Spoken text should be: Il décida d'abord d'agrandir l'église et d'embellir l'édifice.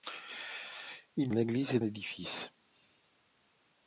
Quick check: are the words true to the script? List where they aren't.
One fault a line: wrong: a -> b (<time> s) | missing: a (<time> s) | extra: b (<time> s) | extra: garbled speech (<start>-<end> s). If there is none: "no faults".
missing: décida d'abord d'agrandir (1.3 s)
missing: d'embellir (1.8 s)